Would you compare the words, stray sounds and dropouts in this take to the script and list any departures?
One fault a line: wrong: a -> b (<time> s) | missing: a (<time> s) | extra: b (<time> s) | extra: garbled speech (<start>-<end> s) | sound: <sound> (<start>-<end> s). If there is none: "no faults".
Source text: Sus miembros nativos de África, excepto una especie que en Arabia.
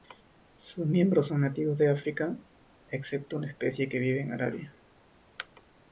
extra: son (1.2 s)
extra: vive (4.0 s)